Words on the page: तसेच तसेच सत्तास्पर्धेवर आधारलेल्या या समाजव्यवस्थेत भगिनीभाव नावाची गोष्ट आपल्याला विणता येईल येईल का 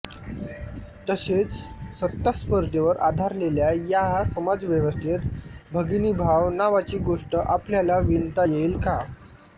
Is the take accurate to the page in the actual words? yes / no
no